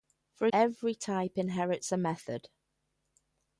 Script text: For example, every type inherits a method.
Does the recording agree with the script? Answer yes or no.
no